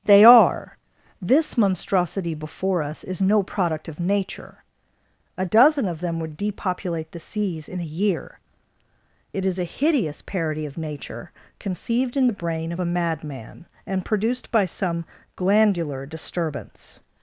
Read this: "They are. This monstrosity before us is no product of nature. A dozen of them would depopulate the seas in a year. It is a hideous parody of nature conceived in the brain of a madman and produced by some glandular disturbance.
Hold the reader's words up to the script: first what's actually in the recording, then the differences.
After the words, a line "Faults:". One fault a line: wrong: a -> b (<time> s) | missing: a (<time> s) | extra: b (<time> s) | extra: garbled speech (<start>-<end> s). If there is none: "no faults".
"They are. This monstrosity before us is no product of nature. A dozen of them would depopulate the seas in a year. It is a hideous parody of nature conceived in the brain of a madman and produced by some glandular disturbance.
Faults:
no faults